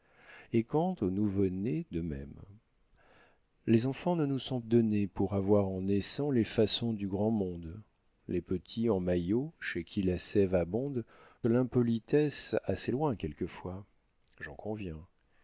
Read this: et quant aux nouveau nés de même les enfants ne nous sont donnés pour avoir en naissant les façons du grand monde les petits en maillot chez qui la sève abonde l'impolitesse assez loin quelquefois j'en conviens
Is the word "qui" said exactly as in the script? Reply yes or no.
yes